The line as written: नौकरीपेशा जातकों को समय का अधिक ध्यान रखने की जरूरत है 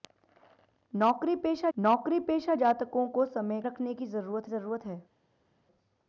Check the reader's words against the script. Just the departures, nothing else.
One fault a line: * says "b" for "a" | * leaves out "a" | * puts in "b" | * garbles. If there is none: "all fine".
* puts in "नौकरीपेशा"
* leaves out "का अधिक ध्यान"
* puts in "जरूरत"